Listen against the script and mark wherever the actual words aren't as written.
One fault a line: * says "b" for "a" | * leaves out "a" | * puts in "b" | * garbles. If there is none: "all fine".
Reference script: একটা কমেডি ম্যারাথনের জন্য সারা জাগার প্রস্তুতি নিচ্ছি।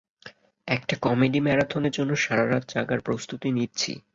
* puts in "রাত"